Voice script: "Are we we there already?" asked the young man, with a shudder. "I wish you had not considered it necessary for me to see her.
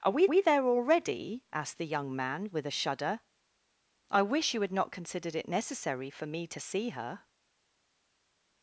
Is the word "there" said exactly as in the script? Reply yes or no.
yes